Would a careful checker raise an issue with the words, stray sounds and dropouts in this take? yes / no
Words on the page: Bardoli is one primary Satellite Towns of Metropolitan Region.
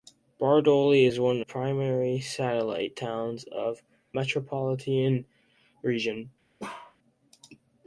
yes